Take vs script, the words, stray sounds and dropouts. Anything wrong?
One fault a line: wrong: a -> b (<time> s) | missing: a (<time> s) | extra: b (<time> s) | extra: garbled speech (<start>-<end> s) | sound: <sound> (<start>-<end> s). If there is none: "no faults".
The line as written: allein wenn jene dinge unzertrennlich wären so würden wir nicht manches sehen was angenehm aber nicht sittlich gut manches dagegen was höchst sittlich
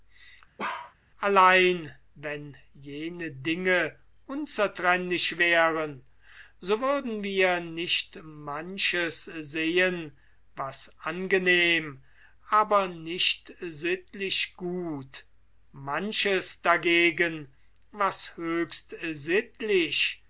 sound: bark (0.6-0.9 s)